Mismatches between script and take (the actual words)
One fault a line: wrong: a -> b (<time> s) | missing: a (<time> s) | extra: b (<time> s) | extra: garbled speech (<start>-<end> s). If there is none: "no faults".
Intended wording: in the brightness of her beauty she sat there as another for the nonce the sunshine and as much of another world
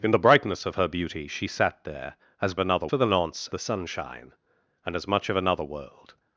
no faults